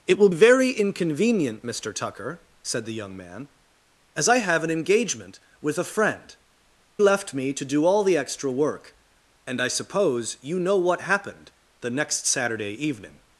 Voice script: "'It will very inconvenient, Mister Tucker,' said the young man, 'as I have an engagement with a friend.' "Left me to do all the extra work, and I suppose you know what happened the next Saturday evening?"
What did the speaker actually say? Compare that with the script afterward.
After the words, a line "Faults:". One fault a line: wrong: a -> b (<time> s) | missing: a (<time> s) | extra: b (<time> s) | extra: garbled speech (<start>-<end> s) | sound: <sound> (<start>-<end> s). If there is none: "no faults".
"'It will very inconvenient, Mister Tucker,' said the young man, 'as I have an engagement with a friend.' "Left me to do all the extra work, and I suppose you know what happened the next Saturday evening?"
Faults:
no faults